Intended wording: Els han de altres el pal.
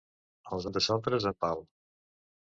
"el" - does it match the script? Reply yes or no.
yes